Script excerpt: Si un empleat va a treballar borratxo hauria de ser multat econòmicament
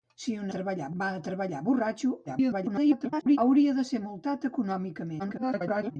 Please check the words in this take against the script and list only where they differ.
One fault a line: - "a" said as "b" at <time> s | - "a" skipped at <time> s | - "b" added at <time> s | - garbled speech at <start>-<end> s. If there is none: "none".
- "empleat" said as "treballar" at 0.6 s
- garbled speech at 2.3-3.4 s
- garbled speech at 5.2-6.0 s